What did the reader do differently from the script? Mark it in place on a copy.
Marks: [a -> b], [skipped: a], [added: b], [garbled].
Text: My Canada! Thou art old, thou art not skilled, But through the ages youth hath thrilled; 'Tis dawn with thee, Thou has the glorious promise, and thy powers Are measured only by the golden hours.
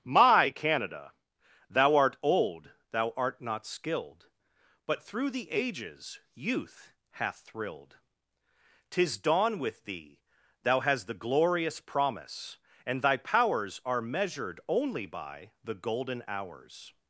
My Canada! Thou art old, thou art not skilled, But through the ages youth hath thrilled; 'Tis dawn with thee, Thou has the glorious promise, and thy powers Are measured only by the golden hours.